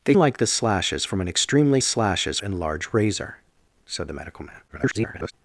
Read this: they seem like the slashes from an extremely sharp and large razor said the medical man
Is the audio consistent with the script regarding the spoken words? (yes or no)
no